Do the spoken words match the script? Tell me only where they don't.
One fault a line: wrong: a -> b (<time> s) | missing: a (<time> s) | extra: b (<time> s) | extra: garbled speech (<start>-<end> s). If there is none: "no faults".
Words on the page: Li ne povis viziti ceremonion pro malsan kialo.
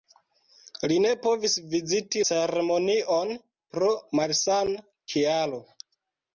no faults